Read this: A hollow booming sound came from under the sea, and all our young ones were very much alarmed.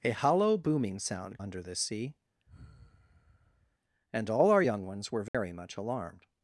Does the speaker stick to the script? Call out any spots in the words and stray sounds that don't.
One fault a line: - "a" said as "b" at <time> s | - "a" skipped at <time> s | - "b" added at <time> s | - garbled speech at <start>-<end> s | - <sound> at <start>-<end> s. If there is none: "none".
- "came from" skipped at 1.4 s
- sigh at 2.5-3.8 s
- dropout at 5.3-5.3 s